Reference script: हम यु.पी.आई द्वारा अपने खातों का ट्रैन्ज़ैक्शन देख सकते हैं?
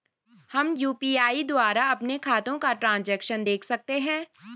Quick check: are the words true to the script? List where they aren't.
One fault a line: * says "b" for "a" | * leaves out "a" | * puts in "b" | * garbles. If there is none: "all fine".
all fine